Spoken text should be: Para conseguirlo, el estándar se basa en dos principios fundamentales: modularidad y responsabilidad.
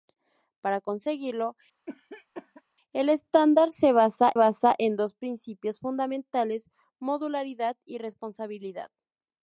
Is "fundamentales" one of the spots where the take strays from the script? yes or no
no